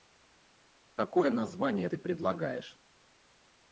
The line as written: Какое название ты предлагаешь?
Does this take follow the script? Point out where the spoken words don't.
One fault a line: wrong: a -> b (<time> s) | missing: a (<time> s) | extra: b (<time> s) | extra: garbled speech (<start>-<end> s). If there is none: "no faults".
no faults